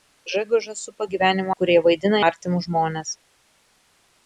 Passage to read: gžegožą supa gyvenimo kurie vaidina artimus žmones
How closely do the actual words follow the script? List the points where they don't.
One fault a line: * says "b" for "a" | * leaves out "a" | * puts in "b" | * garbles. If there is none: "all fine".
all fine